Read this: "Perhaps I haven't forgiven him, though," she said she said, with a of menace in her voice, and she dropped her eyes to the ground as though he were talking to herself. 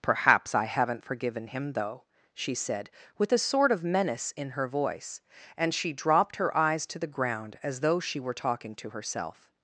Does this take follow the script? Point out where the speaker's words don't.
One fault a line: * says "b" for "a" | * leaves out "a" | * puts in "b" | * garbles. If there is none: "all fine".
* leaves out "she said"
* puts in "sort"
* says "she" for "he"